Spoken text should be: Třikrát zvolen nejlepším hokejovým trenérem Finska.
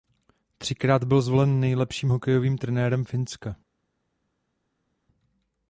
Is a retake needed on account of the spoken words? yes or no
yes